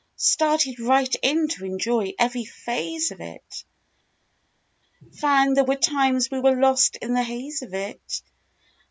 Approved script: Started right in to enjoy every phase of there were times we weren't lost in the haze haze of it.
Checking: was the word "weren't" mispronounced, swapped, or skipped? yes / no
yes